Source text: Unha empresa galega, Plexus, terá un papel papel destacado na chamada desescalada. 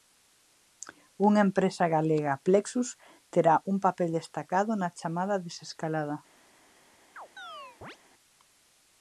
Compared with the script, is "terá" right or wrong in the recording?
right